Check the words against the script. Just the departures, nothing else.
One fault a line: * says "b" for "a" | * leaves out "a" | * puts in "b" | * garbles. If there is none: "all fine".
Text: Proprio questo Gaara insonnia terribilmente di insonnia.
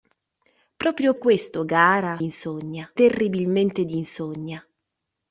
all fine